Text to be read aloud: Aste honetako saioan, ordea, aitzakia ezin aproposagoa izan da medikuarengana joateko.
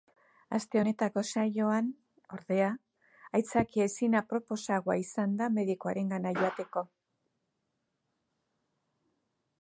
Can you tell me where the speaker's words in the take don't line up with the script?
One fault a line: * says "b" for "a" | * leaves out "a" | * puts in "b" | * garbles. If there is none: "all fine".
all fine